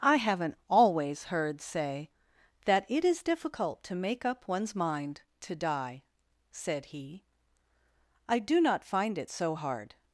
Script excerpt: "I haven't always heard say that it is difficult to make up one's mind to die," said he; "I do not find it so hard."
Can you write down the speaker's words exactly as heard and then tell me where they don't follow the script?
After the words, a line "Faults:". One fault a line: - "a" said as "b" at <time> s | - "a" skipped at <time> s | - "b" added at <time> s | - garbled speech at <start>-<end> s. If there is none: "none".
"I haven't always heard say that it is difficult to make up one's mind to die," said he; "I do not find it so hard."
Faults:
none